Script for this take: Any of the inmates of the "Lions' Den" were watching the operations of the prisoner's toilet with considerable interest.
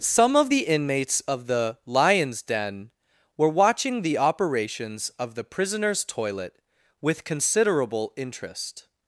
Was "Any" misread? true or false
true